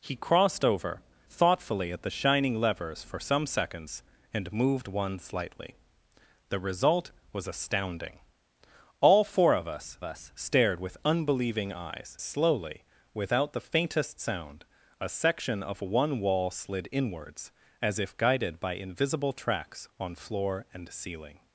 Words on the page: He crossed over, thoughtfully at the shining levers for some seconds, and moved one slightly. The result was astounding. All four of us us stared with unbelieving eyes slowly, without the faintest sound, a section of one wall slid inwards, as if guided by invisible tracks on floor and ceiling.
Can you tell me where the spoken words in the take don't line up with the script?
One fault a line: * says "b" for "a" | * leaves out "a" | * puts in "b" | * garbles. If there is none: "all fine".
all fine